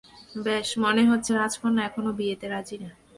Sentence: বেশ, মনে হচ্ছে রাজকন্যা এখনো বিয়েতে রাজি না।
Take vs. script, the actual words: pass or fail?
pass